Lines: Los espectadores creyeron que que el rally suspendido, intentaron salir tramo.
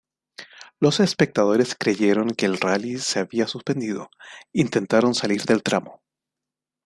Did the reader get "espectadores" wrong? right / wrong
right